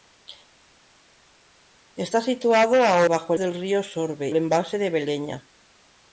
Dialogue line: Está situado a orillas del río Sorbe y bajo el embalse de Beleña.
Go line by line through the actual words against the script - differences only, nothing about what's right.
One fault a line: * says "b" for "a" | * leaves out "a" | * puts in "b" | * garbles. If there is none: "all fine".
* says "bajo" for "orillas"
* leaves out "y bajo"